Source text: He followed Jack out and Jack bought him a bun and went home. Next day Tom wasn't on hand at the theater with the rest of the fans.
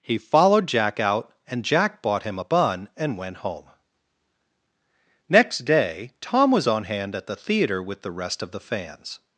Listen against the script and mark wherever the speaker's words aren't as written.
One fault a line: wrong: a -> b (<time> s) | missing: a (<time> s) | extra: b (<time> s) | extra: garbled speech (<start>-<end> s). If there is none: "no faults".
wrong: wasn't -> was (6.5 s)